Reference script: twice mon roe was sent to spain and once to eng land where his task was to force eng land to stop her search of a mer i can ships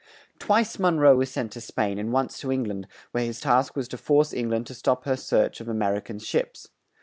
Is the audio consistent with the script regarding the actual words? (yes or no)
yes